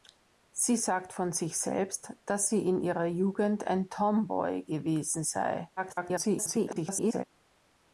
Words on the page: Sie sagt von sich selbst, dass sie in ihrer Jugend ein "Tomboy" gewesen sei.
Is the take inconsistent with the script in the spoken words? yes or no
yes